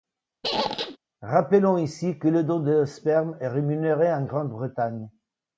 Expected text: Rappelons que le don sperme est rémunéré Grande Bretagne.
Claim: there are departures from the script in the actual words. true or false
true